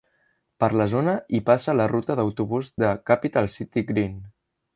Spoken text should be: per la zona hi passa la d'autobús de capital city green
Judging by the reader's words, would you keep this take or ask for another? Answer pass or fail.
fail